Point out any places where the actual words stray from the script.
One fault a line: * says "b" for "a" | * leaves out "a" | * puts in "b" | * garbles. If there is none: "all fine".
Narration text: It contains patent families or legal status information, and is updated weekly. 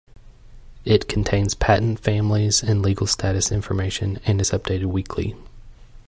* says "and" for "or"